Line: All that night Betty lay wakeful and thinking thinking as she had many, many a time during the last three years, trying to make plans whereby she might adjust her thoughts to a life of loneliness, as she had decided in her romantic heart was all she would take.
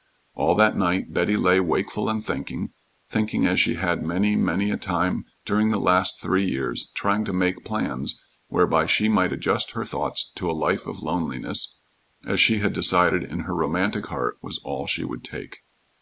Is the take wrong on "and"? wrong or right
right